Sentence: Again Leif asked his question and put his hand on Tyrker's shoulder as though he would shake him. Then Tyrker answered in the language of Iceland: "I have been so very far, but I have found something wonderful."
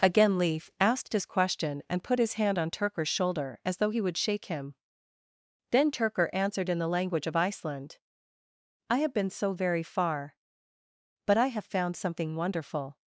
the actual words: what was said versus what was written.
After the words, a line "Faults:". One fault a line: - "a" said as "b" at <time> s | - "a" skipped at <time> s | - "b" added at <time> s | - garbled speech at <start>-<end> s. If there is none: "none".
Again Leif asked his question and put his hand on Tyrker's shoulder as though he would shake him. Then Tyrker answered in the language of Iceland: "I have been so very far, but I have found something wonderful."
Faults:
none